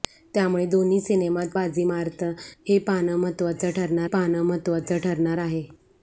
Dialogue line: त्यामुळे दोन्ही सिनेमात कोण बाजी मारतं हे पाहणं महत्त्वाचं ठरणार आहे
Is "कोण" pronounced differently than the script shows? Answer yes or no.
yes